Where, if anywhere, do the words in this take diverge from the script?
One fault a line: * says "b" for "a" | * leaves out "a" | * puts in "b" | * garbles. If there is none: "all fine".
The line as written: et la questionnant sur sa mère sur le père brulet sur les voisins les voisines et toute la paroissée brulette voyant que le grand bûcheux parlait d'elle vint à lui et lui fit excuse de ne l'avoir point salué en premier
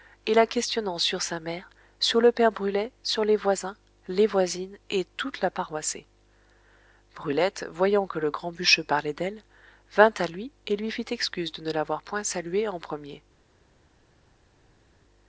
all fine